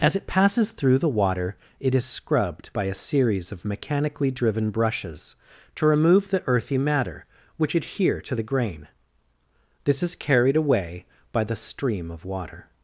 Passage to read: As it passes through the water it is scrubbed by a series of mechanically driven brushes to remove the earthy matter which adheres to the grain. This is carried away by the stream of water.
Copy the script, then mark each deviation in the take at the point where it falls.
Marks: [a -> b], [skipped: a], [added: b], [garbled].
As it passes through the water it is scrubbed by a series of mechanically driven brushes to remove the earthy matter which [adheres -> adhere] to the grain. This is carried away by the stream of water.